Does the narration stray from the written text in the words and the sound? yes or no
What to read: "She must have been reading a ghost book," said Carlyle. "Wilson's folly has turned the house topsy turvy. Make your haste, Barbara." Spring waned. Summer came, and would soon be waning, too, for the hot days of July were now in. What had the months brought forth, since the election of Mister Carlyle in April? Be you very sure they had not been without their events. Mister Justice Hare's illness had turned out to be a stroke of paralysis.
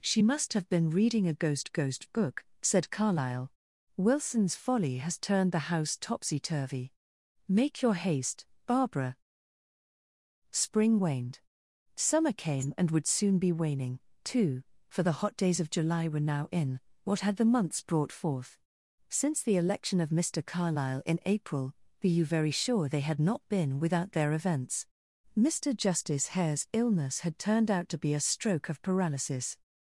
yes